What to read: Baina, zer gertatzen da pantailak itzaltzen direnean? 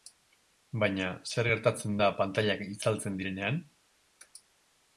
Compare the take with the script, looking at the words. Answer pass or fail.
pass